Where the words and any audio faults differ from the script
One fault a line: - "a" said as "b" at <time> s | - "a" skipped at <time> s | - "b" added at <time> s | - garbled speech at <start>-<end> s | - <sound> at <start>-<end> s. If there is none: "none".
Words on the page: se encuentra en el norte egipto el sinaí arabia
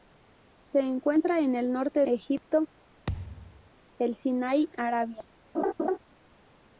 - thud at 3.1-3.7 s
- laugh at 5.5-6.0 s